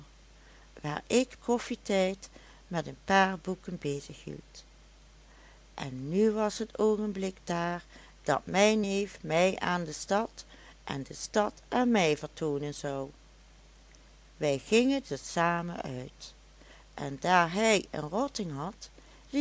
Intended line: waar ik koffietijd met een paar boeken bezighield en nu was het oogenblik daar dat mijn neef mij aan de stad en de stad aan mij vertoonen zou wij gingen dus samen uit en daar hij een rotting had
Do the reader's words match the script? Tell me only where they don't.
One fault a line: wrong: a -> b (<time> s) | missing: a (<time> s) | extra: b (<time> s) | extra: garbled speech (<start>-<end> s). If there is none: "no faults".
no faults